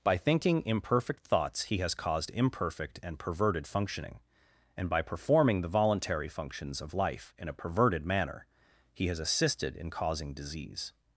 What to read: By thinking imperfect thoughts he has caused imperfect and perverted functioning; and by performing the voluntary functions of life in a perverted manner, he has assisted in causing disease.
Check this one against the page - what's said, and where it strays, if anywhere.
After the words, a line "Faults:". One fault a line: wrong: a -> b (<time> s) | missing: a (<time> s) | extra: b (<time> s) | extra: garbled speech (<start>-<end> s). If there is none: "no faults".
By thinking imperfect thoughts he has caused imperfect and perverted functioning; and by performing the voluntary functions of life in a perverted manner, he has assisted in causing disease.
Faults:
no faults